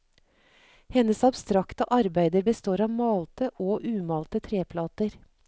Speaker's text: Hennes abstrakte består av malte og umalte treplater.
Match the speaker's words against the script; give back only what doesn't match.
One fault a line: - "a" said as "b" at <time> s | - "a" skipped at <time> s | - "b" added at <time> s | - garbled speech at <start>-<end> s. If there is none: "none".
- "arbeider" added at 1.8 s